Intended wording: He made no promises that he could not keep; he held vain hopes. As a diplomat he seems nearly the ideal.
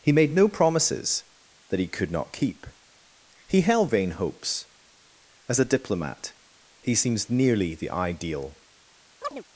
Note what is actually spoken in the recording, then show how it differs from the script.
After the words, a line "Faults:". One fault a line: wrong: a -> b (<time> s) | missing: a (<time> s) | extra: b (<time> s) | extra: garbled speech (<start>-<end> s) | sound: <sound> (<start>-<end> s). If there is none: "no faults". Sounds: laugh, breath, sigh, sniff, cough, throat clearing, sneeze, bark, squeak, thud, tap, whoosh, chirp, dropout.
He made no promises that he could not keep; he held vain hopes. As a diplomat he seems nearly the ideal.
Faults:
sound: chirp (9.2-9.4 s)